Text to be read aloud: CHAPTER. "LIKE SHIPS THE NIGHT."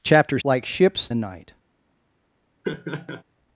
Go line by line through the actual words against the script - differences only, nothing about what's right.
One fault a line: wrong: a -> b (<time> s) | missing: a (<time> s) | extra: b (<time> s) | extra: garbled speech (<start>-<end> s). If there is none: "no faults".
no faults